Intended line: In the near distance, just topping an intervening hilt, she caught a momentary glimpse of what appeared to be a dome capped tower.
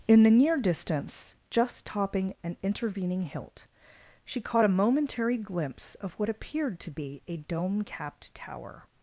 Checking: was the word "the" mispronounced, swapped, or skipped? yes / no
no